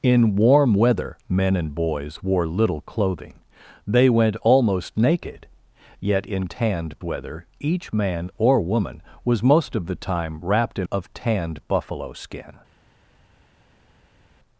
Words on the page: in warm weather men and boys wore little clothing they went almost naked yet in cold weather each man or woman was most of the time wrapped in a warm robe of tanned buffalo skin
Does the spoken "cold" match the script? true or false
false